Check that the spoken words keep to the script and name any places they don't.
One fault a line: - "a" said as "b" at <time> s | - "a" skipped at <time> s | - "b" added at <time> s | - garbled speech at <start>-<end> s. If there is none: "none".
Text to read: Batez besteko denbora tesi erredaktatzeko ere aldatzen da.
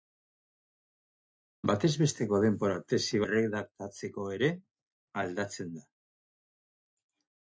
none